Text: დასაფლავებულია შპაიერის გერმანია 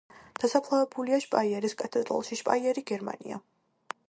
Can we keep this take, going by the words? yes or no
no